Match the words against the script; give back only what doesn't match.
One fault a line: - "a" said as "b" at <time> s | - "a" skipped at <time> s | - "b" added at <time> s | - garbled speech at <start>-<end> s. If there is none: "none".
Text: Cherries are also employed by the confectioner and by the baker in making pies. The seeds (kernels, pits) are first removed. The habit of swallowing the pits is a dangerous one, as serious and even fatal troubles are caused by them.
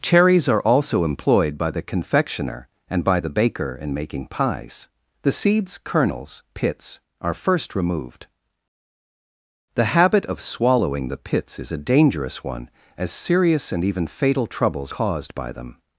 - "are" skipped at 14.9 s